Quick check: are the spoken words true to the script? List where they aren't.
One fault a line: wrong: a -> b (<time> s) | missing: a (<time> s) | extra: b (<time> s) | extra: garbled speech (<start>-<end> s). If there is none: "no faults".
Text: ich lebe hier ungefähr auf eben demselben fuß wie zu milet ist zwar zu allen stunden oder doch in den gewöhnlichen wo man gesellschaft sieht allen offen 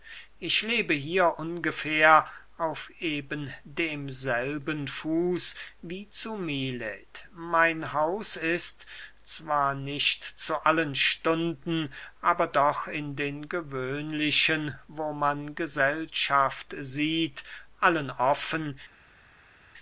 extra: mein haus (7.3 s)
extra: nicht (9.8 s)
wrong: oder -> aber (12.2 s)